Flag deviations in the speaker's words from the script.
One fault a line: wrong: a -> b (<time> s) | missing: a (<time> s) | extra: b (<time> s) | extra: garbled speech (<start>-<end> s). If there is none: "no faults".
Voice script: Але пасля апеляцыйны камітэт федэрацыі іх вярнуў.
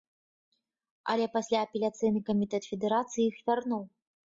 no faults